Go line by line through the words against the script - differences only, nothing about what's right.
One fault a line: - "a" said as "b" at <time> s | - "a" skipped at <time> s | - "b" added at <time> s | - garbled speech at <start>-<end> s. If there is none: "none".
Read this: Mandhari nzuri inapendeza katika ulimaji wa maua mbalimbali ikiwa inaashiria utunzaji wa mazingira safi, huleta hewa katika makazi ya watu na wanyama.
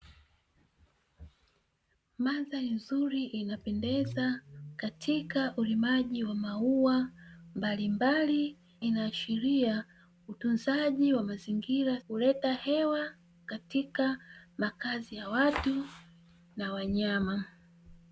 - "ikiwa" skipped at 8.6 s
- "safi" skipped at 12.0 s